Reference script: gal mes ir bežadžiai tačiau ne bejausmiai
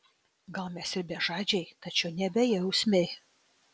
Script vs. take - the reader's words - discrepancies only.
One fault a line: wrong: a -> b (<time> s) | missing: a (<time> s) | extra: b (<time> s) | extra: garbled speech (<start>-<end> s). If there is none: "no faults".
no faults